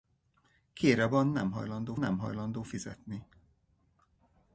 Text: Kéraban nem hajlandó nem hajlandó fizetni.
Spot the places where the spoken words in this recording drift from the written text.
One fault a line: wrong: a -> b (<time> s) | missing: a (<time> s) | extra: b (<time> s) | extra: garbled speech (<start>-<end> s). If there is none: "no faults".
no faults